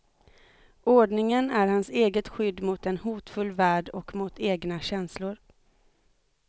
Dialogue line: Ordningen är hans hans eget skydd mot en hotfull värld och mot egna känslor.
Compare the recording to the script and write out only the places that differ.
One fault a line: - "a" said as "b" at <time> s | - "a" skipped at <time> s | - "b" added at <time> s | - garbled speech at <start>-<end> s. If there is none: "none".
- "hans" skipped at 1.9 s